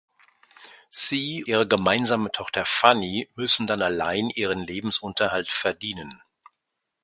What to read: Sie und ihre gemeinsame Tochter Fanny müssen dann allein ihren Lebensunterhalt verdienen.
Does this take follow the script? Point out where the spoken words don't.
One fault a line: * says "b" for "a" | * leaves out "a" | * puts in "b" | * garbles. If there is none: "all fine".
* leaves out "und"